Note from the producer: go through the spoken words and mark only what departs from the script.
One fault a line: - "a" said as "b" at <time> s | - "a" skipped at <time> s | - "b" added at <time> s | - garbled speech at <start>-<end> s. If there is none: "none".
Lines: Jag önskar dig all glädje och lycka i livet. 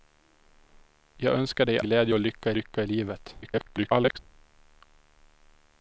- "all" skipped at 1.8 s
- "lycka" added at 2.5 s
- garbled speech at 3.4-4.2 s